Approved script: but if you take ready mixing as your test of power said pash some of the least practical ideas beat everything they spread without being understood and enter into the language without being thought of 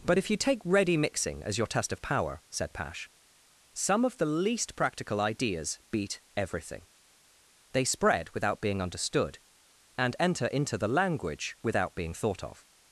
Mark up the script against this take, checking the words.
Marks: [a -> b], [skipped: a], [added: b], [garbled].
but if you take ready mixing as your test of power said pash some of the least practical ideas beat everything they spread without being understood and enter into the language without being thought of